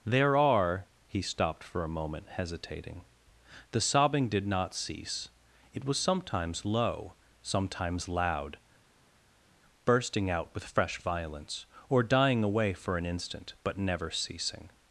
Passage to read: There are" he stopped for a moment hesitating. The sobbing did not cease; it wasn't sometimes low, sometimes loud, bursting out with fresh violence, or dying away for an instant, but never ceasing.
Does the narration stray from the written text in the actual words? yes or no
yes